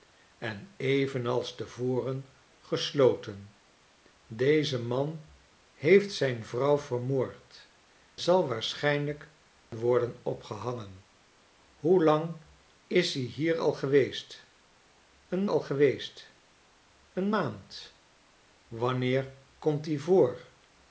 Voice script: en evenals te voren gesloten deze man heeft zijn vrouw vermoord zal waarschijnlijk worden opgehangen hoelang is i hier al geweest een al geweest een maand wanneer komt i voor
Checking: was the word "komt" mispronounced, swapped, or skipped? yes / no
no